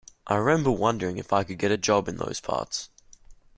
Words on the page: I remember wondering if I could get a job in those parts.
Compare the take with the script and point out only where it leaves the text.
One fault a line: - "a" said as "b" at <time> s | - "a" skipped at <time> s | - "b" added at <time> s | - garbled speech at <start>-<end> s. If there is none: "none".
none